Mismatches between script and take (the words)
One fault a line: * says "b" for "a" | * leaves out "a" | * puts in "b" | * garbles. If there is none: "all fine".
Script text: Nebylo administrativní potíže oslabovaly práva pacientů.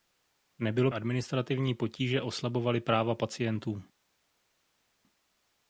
all fine